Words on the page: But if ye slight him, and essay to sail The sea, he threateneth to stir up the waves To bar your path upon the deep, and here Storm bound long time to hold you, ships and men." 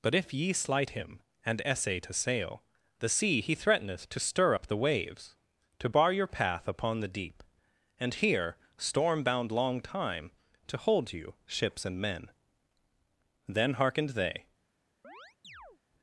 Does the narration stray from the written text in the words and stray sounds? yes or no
yes